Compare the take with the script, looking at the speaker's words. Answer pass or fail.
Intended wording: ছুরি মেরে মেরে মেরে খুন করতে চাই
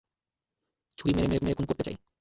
pass